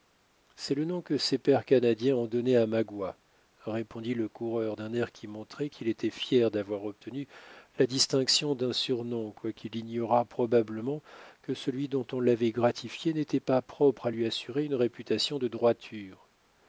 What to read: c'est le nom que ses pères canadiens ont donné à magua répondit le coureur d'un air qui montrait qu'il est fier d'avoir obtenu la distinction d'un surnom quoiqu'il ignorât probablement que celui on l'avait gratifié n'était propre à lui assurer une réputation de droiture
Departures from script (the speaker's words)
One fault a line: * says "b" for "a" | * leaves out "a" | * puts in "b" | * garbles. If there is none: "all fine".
* says "était" for "est"
* puts in "dont"
* puts in "pas"